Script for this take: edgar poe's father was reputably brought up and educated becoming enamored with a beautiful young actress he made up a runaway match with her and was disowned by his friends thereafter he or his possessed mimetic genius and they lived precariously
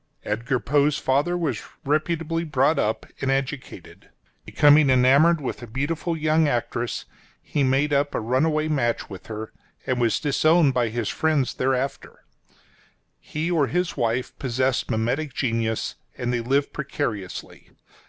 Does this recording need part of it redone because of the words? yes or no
yes